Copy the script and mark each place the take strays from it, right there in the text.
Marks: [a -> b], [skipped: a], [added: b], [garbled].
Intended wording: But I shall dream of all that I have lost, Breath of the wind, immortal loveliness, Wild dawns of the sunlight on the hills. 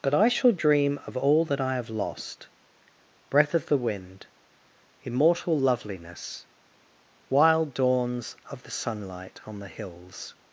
But I shall dream of all that I have lost, Breath of the wind, immortal loveliness, Wild dawns of the sunlight on the hills.